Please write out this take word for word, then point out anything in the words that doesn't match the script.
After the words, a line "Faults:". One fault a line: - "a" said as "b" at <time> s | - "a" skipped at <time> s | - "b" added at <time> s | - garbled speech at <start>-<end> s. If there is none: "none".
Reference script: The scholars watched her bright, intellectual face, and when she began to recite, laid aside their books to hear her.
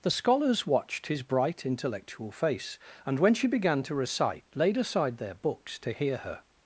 The scholars watched his bright, intellectual face, and when she began to recite, laid aside their books to hear her.
Faults:
- "her" said as "his" at 1.1 s